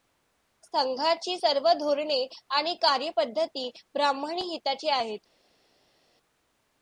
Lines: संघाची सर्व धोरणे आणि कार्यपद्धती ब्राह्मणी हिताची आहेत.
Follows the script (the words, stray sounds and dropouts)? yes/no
yes